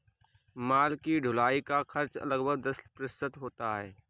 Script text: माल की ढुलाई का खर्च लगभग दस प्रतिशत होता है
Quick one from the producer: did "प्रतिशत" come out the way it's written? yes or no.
yes